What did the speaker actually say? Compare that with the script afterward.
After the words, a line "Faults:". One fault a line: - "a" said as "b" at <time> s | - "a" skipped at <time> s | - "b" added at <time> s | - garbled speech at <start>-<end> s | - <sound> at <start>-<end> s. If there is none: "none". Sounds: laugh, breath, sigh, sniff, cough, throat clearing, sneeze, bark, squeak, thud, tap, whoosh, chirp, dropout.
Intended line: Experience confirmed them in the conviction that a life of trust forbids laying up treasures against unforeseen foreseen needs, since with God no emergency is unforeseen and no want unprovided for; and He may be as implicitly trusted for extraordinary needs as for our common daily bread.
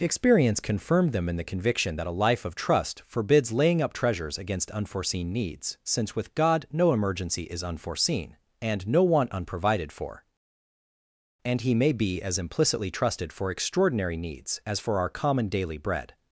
Experience confirmed them in the conviction that a life of trust forbids laying up treasures against unforeseen needs, since with God no emergency is unforeseen and no want unprovided for; and He may be as implicitly trusted for extraordinary needs as for our common daily bread.
Faults:
- "foreseen" skipped at 5.3 s